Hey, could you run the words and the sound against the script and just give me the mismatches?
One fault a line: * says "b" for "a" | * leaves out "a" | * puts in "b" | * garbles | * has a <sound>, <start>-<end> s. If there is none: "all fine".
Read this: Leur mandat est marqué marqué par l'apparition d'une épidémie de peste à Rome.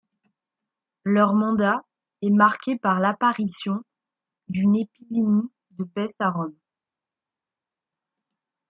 * leaves out "marqué"